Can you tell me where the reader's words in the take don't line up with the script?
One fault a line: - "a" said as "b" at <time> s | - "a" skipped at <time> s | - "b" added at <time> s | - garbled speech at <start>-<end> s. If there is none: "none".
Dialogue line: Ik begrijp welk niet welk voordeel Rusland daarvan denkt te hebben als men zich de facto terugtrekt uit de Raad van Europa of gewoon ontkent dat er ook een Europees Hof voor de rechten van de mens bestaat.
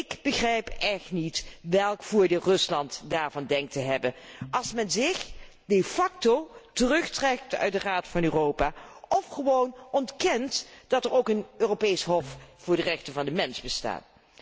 - "welk" said as "echt" at 0.7 s